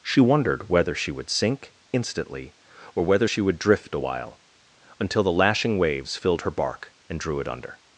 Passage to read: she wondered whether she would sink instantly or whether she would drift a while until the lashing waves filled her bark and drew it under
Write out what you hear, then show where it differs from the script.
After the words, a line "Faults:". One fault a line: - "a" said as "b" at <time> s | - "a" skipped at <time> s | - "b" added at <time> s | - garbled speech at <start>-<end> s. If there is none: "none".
she wondered whether she would sink instantly or whether she would drift a while until the lashing waves filled her bark and drew it under
Faults:
none